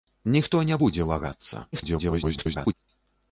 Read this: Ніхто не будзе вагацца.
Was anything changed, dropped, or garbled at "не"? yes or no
no